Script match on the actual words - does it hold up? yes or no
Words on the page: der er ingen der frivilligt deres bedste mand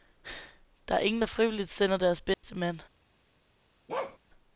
no